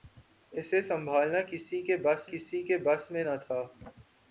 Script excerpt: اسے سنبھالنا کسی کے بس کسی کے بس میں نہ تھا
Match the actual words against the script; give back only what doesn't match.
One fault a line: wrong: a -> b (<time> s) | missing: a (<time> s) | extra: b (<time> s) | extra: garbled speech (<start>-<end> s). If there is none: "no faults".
no faults